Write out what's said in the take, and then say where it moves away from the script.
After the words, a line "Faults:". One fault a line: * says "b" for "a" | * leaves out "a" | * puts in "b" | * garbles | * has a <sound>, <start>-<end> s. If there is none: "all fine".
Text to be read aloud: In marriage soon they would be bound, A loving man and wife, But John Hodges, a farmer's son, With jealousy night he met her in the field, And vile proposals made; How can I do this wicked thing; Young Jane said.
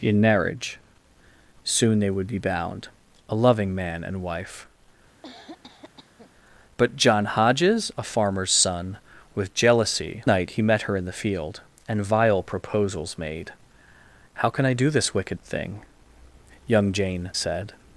In marriage soon they would be bound, A loving man and wife, But John Hodges, a farmer's son, With jealousy night he met her in the field, And vile proposals made; How can I do this wicked thing; Young Jane said.
Faults:
* has a cough, 5.2-6.3 s